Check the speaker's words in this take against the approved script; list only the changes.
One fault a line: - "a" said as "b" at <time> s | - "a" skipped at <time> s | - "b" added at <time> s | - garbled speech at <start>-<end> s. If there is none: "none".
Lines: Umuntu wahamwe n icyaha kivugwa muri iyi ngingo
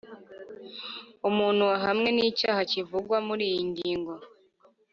none